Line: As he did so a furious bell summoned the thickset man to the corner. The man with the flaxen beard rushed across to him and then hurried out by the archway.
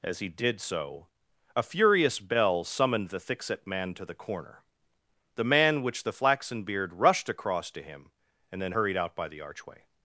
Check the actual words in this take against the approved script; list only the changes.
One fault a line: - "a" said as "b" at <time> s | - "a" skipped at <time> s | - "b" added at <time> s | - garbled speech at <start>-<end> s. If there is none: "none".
- "with" said as "which" at 5.8 s